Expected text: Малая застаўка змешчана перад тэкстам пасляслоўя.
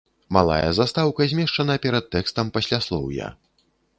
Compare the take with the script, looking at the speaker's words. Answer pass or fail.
pass